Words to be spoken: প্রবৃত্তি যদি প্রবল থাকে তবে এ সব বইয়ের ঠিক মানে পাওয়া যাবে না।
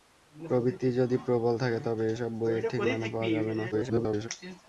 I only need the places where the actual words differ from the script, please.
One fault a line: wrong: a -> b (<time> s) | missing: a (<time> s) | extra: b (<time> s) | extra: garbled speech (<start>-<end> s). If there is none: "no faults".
extra: garbled speech (3.7-4.3 s)